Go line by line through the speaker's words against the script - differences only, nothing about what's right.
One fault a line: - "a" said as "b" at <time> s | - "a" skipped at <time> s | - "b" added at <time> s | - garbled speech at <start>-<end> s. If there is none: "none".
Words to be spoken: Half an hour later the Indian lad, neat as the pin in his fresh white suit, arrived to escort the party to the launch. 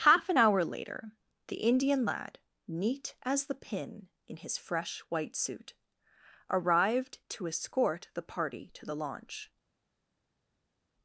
none